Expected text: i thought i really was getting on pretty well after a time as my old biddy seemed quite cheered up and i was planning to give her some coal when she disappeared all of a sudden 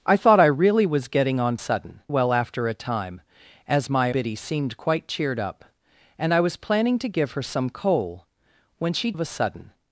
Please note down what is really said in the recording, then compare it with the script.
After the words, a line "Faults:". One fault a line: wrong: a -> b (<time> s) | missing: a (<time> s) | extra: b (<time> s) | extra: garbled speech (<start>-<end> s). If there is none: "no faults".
i thought i really was getting on sudden well after a time as my biddy seemed quite cheered up and i was planning to give her some coal when she of a sudden
Faults:
wrong: pretty -> sudden (1.5 s)
missing: old (4.1 s)
missing: disappeared all (9.1 s)